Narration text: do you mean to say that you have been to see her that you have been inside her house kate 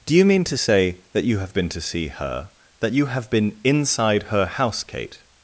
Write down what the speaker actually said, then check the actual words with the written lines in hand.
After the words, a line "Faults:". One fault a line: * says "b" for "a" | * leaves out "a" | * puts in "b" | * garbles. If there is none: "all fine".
do you mean to say that you have been to see her that you have been inside her house kate
Faults:
all fine